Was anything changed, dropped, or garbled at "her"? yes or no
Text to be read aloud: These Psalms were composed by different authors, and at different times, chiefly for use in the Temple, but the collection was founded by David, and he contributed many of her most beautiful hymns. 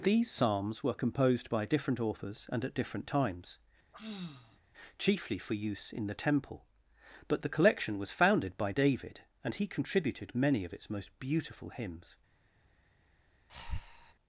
yes